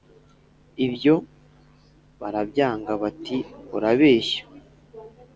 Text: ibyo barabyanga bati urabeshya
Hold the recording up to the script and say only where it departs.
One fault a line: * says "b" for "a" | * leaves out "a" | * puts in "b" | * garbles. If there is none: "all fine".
all fine